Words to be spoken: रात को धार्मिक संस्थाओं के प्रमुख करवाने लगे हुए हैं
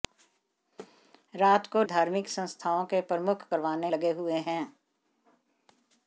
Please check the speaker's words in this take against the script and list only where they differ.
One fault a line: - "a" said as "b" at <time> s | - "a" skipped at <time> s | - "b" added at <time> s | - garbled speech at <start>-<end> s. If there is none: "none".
none